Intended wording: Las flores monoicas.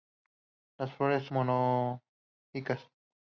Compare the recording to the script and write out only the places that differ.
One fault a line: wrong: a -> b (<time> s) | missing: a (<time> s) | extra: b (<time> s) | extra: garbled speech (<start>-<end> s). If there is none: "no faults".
no faults